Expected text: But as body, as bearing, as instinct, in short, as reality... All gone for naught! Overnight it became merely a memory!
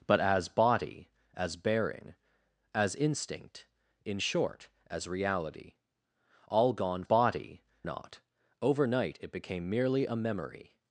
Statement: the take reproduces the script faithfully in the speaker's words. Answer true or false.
false